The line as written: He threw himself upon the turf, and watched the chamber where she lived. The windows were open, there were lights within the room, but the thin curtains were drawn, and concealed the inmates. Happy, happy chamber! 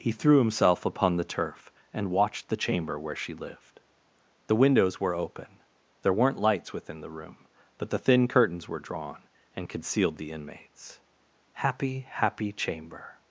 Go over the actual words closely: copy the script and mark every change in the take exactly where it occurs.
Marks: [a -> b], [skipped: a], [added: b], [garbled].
He threw himself upon the turf, and watched the chamber where she lived. The windows were open, there [were -> weren't] lights within the room, but the thin curtains were drawn, and concealed the inmates. Happy, happy chamber!